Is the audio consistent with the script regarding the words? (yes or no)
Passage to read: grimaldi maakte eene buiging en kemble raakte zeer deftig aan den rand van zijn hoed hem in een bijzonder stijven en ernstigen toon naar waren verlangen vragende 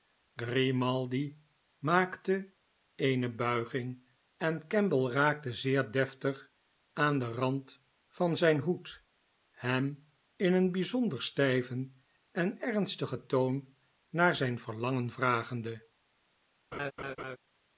no